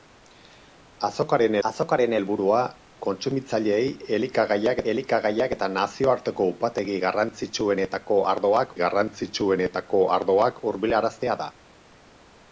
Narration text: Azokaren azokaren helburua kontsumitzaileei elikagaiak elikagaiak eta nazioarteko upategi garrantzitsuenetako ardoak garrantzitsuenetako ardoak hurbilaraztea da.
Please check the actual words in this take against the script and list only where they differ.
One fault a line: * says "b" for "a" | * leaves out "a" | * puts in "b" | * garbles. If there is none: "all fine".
all fine